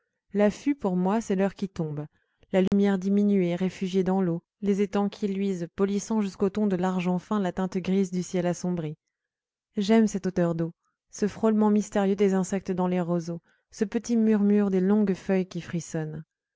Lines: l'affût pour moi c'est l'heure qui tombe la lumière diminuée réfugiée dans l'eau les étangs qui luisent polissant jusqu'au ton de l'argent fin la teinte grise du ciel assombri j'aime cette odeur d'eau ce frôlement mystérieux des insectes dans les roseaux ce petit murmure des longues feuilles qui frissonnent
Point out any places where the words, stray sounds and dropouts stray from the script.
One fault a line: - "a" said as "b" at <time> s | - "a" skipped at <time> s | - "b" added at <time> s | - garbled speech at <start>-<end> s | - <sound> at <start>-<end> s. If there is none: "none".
- dropout at 2.7-2.7 s